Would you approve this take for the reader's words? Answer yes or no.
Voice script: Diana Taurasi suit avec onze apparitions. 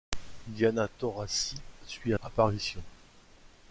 no